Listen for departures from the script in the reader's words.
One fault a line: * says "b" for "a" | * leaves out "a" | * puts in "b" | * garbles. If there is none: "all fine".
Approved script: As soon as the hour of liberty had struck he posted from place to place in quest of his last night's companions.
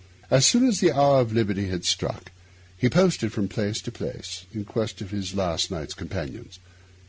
all fine